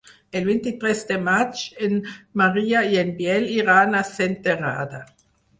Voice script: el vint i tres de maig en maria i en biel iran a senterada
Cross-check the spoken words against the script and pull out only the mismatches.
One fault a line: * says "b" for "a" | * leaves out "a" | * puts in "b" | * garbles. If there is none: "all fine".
all fine